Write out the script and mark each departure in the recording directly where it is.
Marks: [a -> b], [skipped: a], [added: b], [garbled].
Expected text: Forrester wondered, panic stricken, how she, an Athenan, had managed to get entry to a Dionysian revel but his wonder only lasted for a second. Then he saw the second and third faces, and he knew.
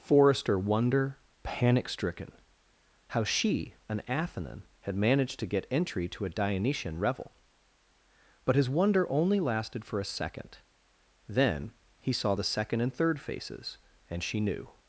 Forrester [wondered, -> wonder] panic stricken, how she, an Athenan, had managed to get entry to a Dionysian revel but his wonder only lasted for a second. Then he saw the second and third faces, and [he -> she] knew.